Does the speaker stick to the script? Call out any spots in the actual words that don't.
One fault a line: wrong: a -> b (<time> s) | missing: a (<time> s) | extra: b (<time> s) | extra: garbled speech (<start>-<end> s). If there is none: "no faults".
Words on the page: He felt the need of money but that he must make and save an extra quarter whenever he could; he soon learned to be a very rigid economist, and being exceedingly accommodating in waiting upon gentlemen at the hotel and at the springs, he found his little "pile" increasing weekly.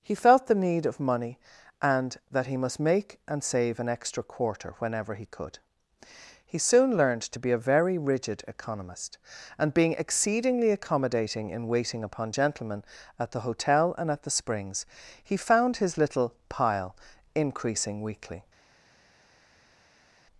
wrong: but -> and (1.8 s)